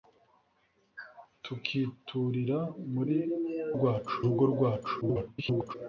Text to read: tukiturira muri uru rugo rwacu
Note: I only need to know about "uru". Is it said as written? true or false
false